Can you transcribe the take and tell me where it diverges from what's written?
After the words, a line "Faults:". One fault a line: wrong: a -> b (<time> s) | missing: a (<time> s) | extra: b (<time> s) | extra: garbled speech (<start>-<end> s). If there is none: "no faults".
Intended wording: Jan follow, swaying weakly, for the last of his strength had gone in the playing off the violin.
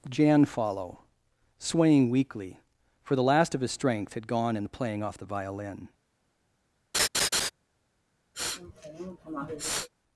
Jan follow, swaying weakly, for the last of his strength had gone in the playing off the violin.
Faults:
no faults